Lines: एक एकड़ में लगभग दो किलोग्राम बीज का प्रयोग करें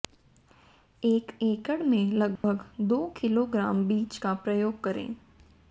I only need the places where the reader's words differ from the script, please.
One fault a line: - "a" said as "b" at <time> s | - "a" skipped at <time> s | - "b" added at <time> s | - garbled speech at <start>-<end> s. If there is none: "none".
none